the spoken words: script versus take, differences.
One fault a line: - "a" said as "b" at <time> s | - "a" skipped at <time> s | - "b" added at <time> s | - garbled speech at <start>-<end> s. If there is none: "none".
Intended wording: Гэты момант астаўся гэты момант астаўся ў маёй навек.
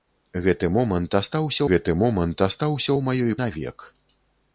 none